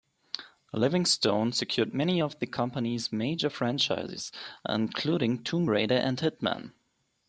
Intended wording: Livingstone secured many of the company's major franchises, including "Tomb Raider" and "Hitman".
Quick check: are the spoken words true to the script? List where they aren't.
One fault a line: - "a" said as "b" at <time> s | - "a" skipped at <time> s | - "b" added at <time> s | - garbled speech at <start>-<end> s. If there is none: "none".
none